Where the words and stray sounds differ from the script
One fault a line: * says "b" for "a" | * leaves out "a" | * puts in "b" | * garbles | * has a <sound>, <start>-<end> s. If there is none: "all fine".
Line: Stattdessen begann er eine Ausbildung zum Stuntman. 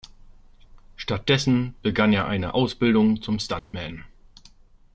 * has a dropout, 3.6-3.7 s